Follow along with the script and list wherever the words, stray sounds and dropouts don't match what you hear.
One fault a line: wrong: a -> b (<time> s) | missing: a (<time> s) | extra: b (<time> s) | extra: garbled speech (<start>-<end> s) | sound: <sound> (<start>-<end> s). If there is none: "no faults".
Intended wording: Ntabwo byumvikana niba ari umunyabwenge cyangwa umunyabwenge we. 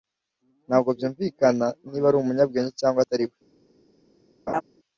wrong: umunyabwenge -> atari (3.0 s)
sound: laugh (4.5-4.6 s)